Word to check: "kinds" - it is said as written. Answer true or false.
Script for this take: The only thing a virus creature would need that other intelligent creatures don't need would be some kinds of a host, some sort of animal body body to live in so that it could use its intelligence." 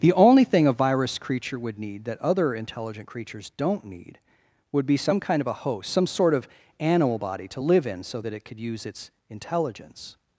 false